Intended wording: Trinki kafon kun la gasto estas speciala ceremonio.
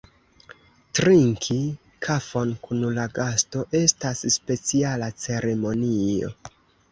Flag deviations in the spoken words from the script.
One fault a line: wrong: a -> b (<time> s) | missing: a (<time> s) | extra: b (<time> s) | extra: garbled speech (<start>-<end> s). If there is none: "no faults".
no faults